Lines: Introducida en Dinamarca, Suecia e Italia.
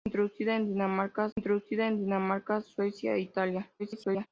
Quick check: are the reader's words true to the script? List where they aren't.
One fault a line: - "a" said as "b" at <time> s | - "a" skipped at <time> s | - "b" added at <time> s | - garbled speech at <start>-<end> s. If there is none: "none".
- "introducida en Dinamarca" added at 1.3 s
- garbled speech at 3.8-4.3 s